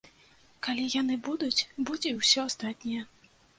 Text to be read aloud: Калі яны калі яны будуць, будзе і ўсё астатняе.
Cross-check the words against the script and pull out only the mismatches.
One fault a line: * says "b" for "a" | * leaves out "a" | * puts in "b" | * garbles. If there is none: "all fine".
* leaves out "калі яны"